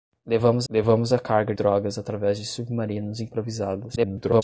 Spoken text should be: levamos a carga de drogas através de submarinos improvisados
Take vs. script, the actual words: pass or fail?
fail